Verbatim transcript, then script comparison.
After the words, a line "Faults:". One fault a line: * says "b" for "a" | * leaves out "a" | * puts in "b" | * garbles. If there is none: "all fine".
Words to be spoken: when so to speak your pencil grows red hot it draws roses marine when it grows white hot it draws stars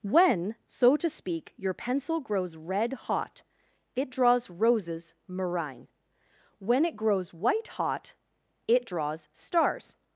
when so to speak your pencil grows red hot it draws roses marine when it grows white hot it draws stars
Faults:
all fine